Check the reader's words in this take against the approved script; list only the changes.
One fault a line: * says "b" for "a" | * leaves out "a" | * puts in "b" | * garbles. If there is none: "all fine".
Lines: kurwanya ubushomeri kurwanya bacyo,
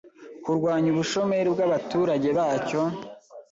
* says "bw'abaturage" for "kurwanya"